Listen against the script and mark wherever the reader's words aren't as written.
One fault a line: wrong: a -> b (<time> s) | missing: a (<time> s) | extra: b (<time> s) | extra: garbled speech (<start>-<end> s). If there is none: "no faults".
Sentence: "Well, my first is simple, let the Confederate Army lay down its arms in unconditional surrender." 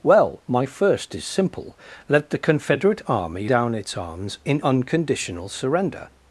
missing: lay (3.5 s)